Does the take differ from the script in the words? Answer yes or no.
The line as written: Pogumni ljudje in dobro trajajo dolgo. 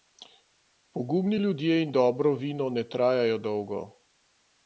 yes